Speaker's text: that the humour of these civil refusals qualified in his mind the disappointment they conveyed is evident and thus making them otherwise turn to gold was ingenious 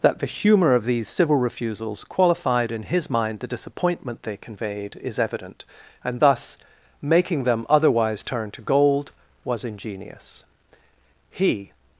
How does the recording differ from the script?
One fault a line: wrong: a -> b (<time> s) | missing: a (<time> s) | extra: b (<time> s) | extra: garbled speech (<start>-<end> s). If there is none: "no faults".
extra: he (11.3 s)